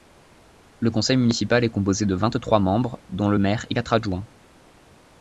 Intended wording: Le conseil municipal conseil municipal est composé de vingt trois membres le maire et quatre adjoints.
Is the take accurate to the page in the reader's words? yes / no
no